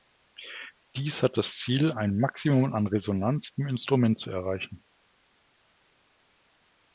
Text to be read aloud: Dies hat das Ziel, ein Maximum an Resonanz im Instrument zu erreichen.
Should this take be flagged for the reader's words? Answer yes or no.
no